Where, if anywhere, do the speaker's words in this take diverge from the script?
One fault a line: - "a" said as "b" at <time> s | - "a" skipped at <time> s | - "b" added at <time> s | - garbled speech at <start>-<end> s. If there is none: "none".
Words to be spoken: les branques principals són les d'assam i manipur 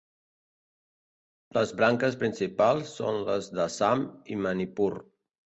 none